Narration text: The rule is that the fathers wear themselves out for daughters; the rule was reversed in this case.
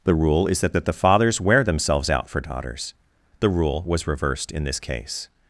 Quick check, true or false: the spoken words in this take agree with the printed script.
false